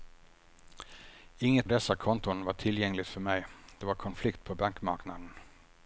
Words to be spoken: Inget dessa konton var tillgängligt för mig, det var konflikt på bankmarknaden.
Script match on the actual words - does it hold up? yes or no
yes